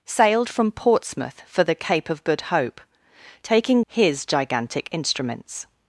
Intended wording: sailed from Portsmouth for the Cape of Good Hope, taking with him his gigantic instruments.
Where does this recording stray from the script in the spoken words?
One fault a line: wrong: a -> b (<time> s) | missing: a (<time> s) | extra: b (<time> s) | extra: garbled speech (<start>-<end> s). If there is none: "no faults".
missing: with him (3.8 s)